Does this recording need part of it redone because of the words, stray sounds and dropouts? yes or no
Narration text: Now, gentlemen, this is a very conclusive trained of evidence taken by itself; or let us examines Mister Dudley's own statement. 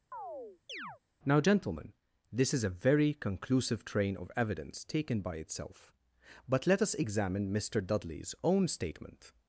yes